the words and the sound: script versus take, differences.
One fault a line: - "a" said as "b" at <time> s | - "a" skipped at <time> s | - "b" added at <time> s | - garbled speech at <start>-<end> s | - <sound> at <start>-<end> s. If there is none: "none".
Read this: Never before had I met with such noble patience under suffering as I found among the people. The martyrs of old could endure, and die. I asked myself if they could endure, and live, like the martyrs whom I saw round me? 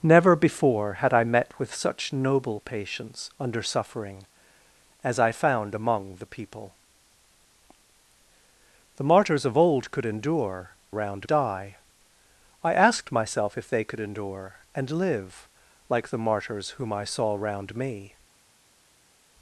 - "and" said as "round" at 10.9 s